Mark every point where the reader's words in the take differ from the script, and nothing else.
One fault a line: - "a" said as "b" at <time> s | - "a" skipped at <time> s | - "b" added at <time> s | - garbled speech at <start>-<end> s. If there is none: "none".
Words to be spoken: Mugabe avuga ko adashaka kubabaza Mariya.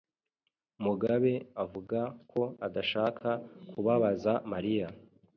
none